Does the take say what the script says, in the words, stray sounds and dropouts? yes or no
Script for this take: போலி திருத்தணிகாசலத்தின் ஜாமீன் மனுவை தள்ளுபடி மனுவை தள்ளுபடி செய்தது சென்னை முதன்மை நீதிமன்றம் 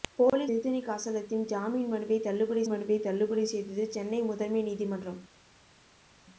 yes